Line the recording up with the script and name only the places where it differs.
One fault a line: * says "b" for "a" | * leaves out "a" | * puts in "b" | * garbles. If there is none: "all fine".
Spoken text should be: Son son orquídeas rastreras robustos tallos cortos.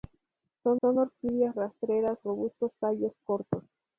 all fine